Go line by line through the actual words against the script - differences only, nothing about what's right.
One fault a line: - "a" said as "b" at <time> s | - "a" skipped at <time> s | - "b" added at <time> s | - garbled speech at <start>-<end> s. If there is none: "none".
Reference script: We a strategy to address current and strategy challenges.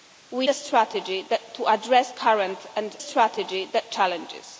none